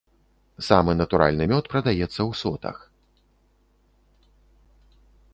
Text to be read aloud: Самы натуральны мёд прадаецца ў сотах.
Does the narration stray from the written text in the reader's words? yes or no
no